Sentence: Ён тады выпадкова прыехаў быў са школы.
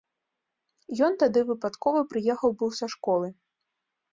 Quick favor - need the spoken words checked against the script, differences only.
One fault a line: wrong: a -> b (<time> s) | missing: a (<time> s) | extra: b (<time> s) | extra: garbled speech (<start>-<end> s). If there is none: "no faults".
no faults